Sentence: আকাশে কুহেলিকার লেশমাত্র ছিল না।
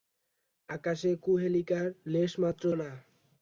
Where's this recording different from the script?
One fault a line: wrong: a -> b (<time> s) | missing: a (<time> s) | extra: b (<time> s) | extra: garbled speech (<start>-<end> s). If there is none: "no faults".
missing: ছিল (2.6 s)